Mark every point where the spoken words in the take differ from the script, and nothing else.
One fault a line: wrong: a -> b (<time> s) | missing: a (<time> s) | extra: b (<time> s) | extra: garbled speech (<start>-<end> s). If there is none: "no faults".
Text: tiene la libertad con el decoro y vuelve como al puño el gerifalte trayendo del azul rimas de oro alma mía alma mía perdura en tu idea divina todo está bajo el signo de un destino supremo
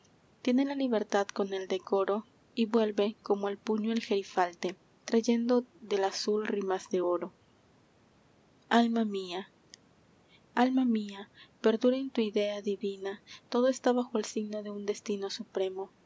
no faults